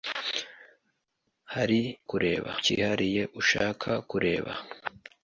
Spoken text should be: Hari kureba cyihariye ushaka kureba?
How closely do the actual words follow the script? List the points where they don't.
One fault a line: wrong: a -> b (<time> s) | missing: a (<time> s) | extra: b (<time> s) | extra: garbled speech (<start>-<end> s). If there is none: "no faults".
no faults